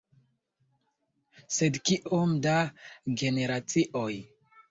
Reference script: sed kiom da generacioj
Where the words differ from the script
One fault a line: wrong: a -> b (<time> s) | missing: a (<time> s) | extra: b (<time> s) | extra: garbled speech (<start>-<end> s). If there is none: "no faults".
no faults